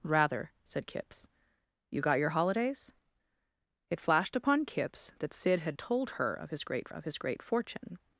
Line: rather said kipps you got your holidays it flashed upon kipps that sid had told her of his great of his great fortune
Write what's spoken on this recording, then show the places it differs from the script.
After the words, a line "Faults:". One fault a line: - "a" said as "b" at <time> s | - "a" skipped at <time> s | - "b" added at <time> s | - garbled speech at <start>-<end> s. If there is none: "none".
rather said kipps you got your holidays it flashed upon kipps that sid had told her of his great of his great fortune
Faults:
none